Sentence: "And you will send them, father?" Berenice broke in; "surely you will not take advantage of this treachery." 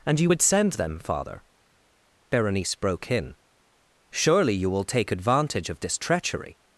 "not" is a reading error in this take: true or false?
true